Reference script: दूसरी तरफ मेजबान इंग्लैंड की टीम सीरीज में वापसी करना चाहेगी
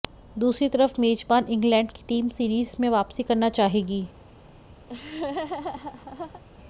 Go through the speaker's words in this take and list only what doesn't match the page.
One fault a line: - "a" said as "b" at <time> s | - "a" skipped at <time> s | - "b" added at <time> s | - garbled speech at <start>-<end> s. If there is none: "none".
none